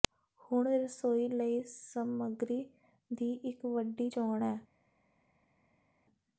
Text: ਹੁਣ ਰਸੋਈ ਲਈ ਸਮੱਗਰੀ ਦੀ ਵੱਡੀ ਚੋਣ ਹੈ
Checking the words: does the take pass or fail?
fail